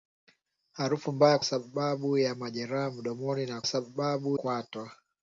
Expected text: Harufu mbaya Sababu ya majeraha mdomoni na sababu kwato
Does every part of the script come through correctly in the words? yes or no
yes